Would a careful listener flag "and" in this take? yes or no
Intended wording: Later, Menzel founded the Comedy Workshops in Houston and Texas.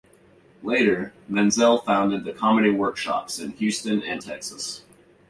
no